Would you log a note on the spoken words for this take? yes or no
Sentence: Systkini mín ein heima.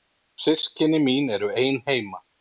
yes